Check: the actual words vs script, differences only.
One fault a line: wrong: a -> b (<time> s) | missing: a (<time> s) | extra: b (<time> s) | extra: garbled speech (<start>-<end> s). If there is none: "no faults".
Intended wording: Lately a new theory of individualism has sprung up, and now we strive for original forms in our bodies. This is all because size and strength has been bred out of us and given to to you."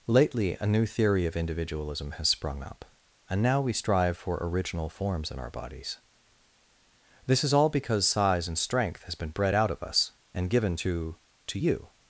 no faults